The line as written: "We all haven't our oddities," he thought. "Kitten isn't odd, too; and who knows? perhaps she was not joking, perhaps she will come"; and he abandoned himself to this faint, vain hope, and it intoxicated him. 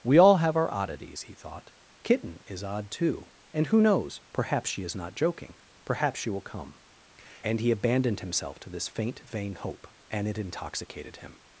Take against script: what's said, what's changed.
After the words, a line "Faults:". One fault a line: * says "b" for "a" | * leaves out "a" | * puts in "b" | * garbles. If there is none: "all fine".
"We all have our oddities," he thought. "Kitten is odd, too; and who knows? perhaps she is not joking, perhaps she will come"; and he abandoned himself to this faint, vain hope, and it intoxicated him.
Faults:
* says "have" for "haven't"
* says "is" for "isn't"
* says "is" for "was"